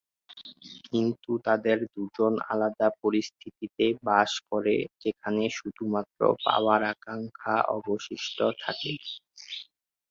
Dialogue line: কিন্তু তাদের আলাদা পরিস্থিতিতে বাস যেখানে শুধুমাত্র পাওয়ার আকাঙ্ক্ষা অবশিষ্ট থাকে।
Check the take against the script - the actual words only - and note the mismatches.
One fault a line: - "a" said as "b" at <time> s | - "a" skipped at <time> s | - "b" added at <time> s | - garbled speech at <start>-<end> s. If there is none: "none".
- "দুজন" added at 1.9 s
- "করে" added at 4.5 s